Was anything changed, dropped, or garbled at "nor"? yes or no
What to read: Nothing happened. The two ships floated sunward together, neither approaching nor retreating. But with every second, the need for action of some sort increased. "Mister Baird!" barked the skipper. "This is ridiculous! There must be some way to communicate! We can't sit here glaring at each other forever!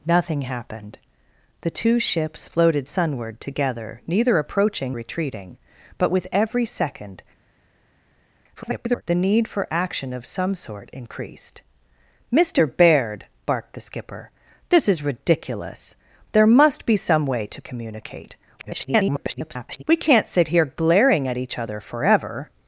yes